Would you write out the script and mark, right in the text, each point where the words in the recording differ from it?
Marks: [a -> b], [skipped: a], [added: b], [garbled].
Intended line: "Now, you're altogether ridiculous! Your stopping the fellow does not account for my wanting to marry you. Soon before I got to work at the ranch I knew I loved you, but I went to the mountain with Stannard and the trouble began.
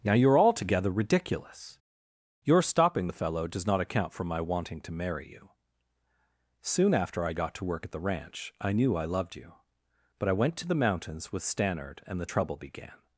"Now, you're altogether ridiculous! Your stopping the fellow does not account for my wanting to marry you. Soon [before -> after] I got to work at the ranch I knew I loved you, but I went to the [mountain -> mountains] with Stannard and the trouble began.